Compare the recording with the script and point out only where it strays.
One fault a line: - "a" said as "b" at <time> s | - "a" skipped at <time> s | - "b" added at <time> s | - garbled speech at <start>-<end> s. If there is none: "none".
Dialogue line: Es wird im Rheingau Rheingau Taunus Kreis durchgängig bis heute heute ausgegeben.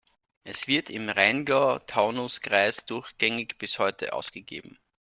- "Rheingau" skipped at 1.8 s
- "heute" skipped at 4.1 s